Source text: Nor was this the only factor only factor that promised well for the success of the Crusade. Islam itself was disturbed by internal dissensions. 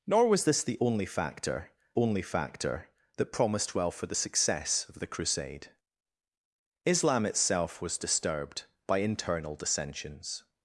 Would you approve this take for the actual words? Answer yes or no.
yes